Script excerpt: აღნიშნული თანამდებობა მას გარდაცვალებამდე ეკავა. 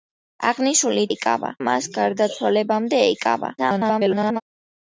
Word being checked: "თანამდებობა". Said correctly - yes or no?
no